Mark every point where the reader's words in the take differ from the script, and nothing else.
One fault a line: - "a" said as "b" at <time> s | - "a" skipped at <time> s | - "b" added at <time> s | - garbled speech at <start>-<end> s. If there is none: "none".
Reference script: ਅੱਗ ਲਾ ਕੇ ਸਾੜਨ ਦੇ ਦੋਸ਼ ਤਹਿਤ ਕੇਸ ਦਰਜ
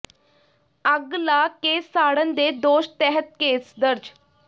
none